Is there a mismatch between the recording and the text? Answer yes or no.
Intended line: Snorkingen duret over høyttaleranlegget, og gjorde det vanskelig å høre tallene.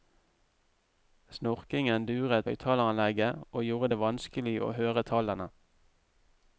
yes